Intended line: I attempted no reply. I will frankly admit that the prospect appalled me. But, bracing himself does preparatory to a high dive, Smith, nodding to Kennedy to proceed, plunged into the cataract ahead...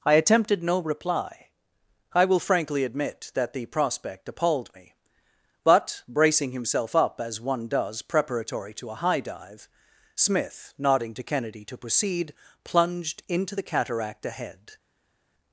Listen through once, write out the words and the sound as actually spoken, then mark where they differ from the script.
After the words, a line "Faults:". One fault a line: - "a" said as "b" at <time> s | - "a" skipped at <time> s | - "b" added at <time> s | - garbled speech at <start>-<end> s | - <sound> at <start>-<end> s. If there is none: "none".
I attempted no reply. I will frankly admit that the prospect appalled me. But, bracing himself up as one does preparatory to a high dive, Smith, nodding to Kennedy to proceed, plunged into the cataract ahead...
Faults:
- "up as one" added at 7.0 s